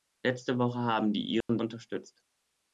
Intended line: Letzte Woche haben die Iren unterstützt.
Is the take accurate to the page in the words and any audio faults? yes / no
no